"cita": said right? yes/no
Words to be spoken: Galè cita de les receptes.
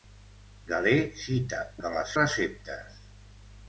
yes